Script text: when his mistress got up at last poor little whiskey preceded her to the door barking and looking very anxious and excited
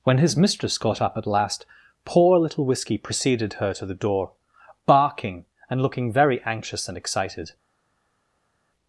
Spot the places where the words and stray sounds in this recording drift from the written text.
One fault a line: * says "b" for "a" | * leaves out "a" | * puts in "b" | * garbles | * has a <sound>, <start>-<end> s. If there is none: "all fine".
all fine